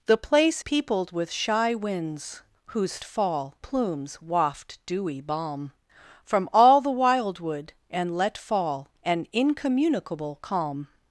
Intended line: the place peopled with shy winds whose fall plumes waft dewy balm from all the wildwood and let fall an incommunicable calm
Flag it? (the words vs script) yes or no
no